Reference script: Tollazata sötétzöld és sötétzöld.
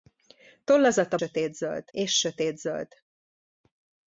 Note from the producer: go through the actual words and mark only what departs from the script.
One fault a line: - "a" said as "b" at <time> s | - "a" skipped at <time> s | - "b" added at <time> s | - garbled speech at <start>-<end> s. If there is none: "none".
none